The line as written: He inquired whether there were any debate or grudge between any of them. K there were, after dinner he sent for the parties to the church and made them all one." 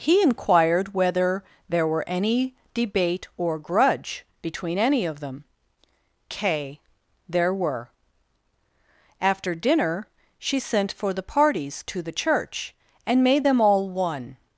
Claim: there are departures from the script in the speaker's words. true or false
true